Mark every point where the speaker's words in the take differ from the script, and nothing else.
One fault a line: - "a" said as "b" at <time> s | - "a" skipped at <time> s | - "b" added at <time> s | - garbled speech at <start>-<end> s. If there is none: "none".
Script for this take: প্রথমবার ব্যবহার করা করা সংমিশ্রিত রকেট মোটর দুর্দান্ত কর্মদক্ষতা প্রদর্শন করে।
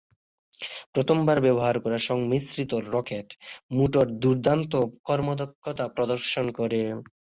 - "করা" skipped at 2.0 s